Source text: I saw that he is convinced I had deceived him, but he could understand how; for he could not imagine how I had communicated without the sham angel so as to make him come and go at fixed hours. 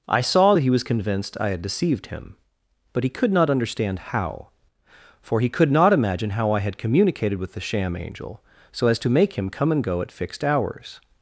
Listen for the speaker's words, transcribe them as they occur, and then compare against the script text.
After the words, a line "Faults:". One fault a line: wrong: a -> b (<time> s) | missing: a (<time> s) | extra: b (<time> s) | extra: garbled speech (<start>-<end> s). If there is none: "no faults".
I saw that he was convinced I had deceived him, but he could not understand how; for he could not imagine how I had communicated with the sham angel so as to make him come and go at fixed hours.
Faults:
wrong: is -> was (0.7 s)
extra: not (3.3 s)
wrong: without -> with (7.4 s)